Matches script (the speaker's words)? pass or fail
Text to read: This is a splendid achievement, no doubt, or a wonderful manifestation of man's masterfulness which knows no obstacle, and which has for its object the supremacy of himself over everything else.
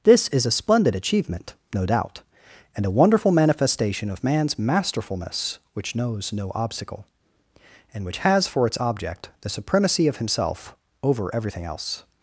fail